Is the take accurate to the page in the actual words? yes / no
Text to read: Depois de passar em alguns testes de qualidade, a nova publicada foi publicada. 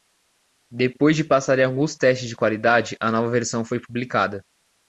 no